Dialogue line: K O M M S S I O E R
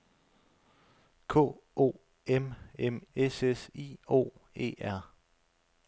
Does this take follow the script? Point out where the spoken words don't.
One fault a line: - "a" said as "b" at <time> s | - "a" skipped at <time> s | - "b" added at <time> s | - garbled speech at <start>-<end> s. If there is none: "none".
none